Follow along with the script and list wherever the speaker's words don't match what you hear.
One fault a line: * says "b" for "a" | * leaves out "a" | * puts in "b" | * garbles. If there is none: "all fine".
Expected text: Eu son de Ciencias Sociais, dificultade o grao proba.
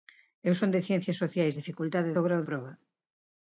all fine